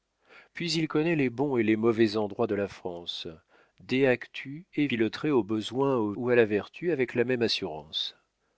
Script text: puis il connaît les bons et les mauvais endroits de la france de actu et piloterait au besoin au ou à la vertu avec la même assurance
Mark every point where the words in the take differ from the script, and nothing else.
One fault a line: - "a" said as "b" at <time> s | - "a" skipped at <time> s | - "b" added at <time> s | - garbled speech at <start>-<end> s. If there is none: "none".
none